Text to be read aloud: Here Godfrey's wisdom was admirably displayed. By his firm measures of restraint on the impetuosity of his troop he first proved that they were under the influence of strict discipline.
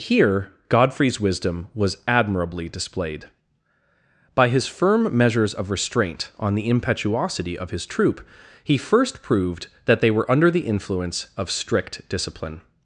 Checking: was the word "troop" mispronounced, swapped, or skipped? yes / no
no